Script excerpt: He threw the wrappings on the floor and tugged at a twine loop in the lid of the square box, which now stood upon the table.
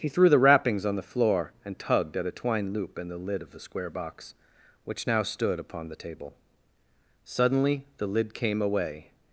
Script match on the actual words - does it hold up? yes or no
no